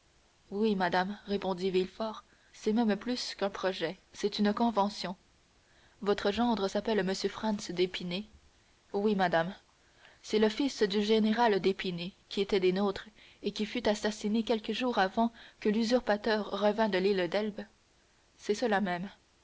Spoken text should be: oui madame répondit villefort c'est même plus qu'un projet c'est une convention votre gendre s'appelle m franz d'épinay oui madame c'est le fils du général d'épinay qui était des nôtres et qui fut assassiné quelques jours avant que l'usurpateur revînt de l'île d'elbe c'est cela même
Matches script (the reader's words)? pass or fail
pass